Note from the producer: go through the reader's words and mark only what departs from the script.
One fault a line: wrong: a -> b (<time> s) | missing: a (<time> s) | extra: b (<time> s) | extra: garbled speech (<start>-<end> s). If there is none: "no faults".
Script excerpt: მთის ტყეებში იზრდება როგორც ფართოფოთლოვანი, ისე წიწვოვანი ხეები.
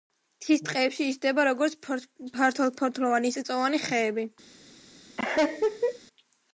missing: ისე (3.4 s)